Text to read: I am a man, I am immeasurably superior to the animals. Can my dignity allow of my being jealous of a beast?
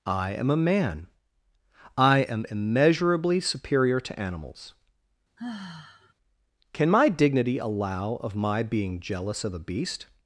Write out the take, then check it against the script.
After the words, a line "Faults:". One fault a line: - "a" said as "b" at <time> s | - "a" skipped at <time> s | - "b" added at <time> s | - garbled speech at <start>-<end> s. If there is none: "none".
I am a man, I am immeasurably superior to animals. Can my dignity allow of my being jealous of a beast?
Faults:
- "the" skipped at 4.2 s